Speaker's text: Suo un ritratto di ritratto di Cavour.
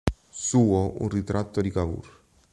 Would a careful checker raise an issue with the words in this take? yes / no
yes